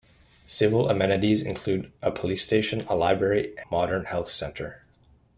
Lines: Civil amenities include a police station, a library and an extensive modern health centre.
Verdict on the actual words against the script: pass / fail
fail